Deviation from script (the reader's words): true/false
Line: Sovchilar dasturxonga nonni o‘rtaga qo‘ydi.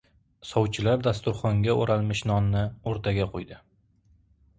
true